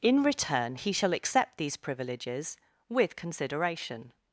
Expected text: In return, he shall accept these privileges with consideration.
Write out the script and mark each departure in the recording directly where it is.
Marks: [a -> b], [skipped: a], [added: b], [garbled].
In return, he shall accept these privileges with consideration.